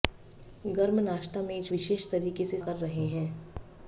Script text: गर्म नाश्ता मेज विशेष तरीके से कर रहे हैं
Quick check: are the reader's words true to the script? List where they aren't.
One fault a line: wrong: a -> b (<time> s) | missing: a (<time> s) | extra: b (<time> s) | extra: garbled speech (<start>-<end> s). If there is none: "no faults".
no faults